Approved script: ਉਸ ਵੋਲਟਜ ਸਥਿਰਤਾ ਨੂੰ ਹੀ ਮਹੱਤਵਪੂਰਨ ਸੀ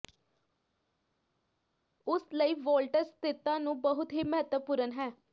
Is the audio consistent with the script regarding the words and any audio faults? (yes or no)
no